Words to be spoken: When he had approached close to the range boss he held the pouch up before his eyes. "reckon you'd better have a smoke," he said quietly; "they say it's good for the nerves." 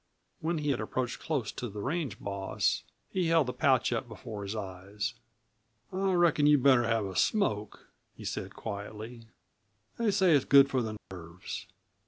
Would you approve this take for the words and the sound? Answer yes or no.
no